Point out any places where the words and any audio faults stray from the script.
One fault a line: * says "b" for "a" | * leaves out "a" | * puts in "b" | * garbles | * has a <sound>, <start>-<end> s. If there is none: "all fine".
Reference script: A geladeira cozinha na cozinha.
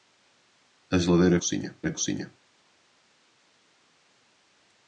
all fine